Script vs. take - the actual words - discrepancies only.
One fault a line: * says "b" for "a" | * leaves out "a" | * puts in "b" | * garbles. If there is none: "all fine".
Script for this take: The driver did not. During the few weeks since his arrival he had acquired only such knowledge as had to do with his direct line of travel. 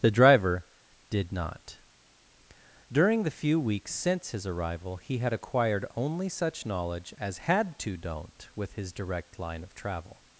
* says "don't" for "do"